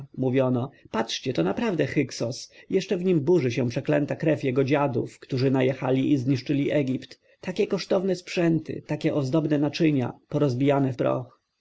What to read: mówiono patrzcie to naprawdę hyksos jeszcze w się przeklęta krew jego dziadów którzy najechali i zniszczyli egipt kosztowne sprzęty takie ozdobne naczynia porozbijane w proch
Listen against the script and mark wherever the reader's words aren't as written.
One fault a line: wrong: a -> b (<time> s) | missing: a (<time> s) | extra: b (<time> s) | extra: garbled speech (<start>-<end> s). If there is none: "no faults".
extra: nim burzy (3.0 s)
extra: takie (7.4 s)